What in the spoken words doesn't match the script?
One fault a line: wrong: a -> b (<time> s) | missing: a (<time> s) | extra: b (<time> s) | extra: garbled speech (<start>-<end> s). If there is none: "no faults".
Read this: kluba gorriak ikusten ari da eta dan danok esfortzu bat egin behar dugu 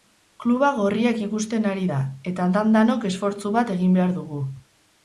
no faults